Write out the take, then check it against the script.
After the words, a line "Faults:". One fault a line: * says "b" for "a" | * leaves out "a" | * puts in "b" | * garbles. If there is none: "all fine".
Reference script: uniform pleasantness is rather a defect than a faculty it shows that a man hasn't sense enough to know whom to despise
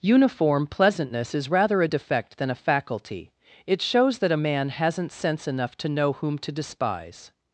uniform pleasantness is rather a defect than a faculty it shows that a man hasn't sense enough to know whom to despise
Faults:
all fine